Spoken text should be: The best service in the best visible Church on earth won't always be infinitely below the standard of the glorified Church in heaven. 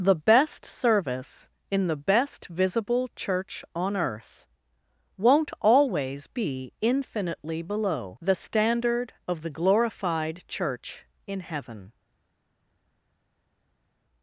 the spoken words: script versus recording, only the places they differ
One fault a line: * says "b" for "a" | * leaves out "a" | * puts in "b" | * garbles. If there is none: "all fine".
all fine